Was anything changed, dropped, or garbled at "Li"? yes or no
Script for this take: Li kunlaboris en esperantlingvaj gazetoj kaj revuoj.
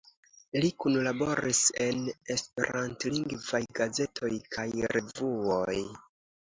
no